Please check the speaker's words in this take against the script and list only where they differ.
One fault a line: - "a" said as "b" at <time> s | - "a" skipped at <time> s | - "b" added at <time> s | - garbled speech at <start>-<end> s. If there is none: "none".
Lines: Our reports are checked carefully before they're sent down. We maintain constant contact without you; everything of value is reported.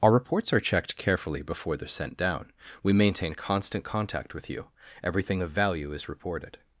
- "without" said as "with" at 4.3 s